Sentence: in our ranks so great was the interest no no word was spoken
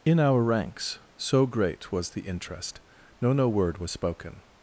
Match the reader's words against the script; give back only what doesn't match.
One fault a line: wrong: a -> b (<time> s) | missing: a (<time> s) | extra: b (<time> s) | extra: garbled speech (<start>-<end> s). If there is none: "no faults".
no faults